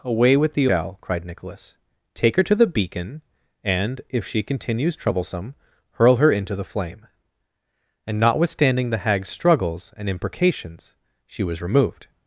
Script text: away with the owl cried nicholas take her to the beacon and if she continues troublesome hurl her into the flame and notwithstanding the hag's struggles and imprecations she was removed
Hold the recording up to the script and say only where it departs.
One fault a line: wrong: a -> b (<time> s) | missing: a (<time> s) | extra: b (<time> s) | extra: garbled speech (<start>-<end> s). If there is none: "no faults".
no faults